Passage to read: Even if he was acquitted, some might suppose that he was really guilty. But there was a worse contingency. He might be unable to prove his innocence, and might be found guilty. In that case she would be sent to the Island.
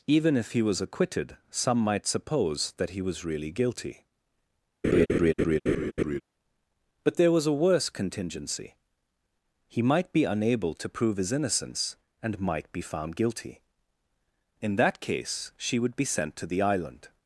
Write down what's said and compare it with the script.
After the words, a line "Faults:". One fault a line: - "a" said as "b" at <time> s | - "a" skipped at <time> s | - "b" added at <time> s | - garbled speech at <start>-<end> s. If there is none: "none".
Even if he was acquitted, some might suppose that he was really guilty. But there was a worse contingency. He might be unable to prove his innocence, and might be found guilty. In that case she would be sent to the Island.
Faults:
none